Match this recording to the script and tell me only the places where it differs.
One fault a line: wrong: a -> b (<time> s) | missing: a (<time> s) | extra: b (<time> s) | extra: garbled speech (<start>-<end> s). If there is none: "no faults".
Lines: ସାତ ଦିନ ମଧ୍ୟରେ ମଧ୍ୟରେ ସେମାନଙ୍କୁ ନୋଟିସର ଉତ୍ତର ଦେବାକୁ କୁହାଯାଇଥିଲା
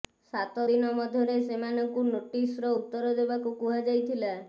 missing: ମଧ୍ୟରେ (1.4 s)